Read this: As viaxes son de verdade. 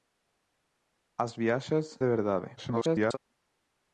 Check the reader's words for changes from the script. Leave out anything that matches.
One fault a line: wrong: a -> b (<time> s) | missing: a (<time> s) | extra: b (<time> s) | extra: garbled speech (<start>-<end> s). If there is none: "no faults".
missing: son (2.0 s)
extra: garbled speech (2.6-3.2 s)